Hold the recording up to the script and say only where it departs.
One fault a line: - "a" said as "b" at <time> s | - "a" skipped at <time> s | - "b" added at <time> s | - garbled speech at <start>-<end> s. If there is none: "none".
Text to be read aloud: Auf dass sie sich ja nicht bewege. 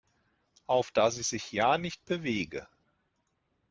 none